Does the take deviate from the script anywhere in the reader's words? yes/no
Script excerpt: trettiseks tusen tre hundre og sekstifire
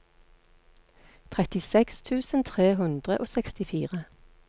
no